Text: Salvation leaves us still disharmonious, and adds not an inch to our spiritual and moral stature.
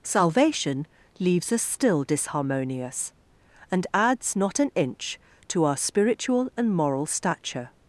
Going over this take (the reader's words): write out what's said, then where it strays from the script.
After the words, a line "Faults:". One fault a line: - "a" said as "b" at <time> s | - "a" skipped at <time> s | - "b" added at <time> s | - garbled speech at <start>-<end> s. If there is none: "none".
Salvation leaves us still disharmonious, and adds not an inch to our spiritual and moral stature.
Faults:
none